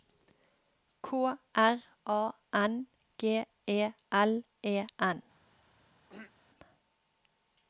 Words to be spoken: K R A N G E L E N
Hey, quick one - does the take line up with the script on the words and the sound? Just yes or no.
no